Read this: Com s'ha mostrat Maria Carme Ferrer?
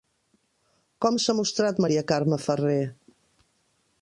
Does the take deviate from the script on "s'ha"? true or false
false